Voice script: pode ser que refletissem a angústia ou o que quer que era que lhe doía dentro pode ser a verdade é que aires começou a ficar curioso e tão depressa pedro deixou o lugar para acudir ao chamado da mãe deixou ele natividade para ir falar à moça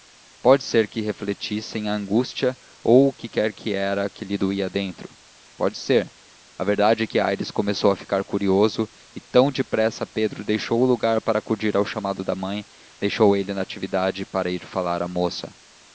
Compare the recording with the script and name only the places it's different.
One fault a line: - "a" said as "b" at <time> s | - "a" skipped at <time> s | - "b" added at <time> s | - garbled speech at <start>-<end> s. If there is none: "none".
none